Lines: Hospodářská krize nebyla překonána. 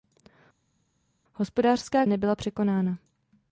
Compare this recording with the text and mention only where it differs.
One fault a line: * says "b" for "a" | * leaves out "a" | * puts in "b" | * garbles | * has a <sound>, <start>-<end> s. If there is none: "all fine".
* leaves out "krize"